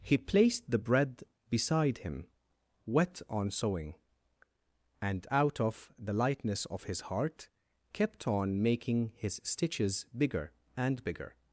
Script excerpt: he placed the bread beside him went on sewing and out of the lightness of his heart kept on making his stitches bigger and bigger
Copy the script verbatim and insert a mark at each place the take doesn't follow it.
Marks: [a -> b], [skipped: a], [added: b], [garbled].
he placed the bread beside him [went -> wet] on sewing and out of the lightness of his heart kept on making his stitches bigger and bigger